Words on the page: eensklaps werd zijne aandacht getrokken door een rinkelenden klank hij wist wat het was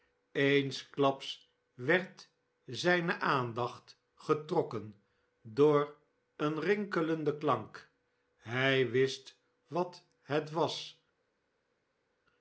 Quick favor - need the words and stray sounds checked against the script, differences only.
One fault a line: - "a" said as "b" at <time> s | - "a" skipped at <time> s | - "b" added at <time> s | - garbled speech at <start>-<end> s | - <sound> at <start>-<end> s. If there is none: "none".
none